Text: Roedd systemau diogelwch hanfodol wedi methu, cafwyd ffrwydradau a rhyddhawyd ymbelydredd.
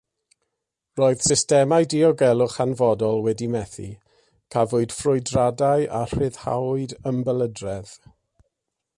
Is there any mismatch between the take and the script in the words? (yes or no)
no